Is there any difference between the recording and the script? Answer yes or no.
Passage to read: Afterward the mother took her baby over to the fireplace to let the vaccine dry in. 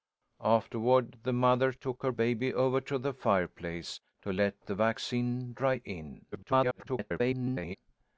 yes